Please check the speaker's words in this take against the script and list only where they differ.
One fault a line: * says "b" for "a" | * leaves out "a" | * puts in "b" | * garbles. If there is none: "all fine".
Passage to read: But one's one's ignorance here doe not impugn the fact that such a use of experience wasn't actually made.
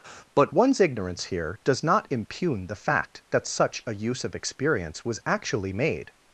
* leaves out "one's"
* says "does" for "doe"
* says "was" for "wasn't"